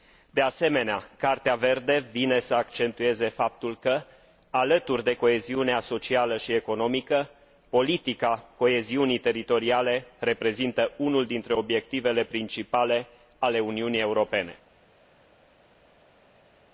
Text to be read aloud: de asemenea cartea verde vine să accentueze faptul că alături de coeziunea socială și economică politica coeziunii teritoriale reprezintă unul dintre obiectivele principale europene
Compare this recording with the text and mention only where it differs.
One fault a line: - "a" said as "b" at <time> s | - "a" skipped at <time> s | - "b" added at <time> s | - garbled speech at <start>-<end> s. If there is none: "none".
- "ale uniunii" added at 13.4 s